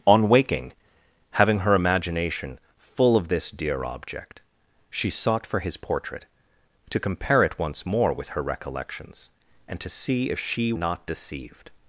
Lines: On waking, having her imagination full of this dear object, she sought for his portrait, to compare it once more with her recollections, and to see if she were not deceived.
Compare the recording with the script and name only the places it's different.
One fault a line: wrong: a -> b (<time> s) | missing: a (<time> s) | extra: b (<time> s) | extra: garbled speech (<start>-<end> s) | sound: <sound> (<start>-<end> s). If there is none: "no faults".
missing: were (10.7 s)